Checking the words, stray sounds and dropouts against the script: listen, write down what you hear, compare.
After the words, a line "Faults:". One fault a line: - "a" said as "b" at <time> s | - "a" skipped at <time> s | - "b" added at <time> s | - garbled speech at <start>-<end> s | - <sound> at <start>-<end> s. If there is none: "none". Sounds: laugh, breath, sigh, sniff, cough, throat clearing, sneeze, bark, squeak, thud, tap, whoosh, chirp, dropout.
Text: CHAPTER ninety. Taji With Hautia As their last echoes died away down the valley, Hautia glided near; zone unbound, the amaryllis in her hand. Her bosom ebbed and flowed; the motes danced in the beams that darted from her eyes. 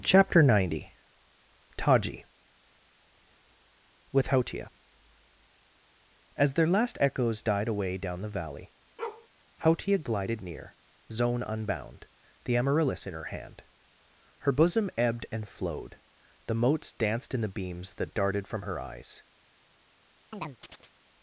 CHAPTER ninety. Taji With Hautia As their last echoes died away down the valley, Hautia glided near; zone unbound, the amaryllis in her hand. Her bosom ebbed and flowed; the motes danced in the beams that darted from her eyes.
Faults:
- bark at 9.0-9.3 s
- chirp at 20.3-21.0 s